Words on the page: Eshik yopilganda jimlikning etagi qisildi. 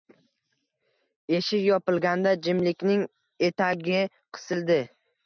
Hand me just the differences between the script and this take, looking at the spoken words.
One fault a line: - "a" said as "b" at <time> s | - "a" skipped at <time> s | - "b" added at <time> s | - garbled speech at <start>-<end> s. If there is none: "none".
none